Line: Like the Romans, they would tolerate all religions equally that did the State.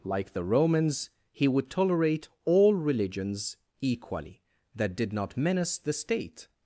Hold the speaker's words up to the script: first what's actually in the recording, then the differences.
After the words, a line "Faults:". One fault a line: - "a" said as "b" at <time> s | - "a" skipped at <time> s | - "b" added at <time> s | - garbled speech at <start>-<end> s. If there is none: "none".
Like the Romans, he would tolerate all religions equally that did not menace the State.
Faults:
- "they" said as "he" at 1.3 s
- "not menace" added at 5.1 s